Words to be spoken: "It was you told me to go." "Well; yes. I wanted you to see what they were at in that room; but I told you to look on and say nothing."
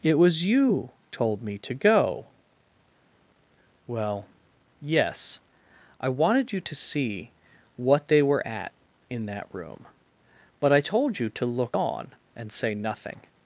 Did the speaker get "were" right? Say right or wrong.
right